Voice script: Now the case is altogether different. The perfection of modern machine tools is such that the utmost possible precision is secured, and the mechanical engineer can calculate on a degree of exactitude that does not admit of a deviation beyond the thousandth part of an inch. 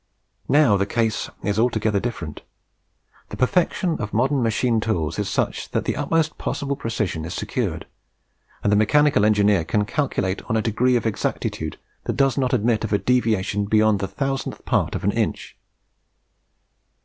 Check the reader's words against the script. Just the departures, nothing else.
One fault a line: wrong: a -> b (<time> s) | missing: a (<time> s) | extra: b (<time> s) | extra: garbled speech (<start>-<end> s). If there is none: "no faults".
no faults